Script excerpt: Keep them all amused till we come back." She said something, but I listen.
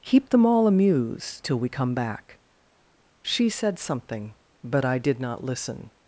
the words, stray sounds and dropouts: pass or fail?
fail